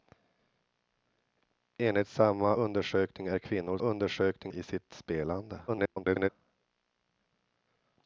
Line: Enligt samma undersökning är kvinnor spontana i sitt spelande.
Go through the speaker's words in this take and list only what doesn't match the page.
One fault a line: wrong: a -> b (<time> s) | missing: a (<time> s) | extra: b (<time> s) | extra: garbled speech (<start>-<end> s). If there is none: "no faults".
wrong: spontana -> undersökning (3.8 s)
extra: garbled speech (5.7-6.3 s)